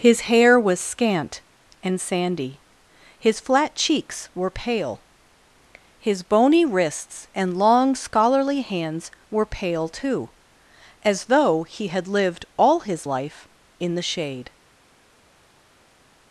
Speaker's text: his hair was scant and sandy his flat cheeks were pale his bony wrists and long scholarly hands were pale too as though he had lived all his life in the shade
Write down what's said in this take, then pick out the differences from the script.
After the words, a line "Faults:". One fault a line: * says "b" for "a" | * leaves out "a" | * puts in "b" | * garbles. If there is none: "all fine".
his hair was scant and sandy his flat cheeks were pale his bony wrists and long scholarly hands were pale too as though he had lived all his life in the shade
Faults:
all fine